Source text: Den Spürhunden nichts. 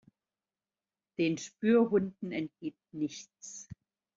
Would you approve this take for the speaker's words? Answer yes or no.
no